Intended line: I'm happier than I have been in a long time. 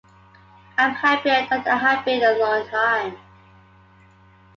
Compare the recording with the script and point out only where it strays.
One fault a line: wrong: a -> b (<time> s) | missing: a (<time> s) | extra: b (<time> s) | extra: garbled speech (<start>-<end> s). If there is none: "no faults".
no faults